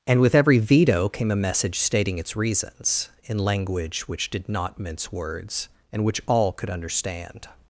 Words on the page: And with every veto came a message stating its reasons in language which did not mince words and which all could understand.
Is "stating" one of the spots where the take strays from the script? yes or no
no